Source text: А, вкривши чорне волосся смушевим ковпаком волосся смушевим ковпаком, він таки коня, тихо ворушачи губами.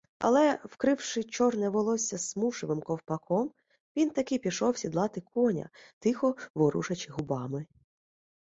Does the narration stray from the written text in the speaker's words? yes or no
yes